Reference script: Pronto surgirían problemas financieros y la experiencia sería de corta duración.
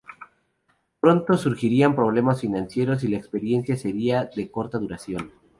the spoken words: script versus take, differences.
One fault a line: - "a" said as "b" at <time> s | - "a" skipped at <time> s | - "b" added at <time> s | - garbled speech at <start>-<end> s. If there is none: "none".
none